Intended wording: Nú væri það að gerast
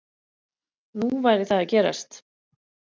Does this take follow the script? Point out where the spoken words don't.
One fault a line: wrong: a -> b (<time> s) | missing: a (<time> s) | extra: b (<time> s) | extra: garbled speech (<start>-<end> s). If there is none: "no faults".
no faults